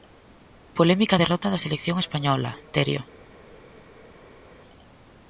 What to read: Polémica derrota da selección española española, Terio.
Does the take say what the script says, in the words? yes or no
no